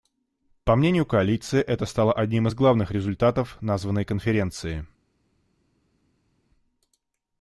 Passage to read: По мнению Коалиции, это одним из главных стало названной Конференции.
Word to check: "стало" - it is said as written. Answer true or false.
false